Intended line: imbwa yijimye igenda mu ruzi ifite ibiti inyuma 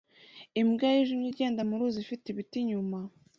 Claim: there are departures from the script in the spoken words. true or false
false